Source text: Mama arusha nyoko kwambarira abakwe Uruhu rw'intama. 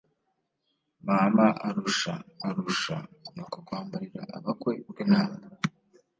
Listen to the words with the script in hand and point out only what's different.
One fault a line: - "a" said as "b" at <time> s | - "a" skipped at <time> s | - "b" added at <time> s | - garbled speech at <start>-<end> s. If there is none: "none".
- "arusha" added at 2.5 s
- "Uruhu" skipped at 4.7 s